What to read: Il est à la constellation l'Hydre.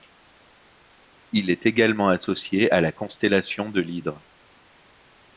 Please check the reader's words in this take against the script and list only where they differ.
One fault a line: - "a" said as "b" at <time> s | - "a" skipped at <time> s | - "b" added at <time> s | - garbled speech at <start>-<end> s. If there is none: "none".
- "également associé" added at 1.7 s
- "de" added at 3.7 s